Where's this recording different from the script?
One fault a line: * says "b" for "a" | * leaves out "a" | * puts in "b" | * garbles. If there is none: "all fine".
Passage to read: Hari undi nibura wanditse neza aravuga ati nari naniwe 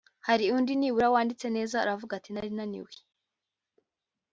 all fine